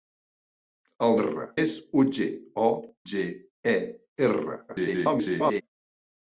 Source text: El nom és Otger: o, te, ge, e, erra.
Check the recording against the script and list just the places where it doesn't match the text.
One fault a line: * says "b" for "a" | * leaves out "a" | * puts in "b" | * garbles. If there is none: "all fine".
* says "erra" for "nom"
* leaves out "te"
* garbles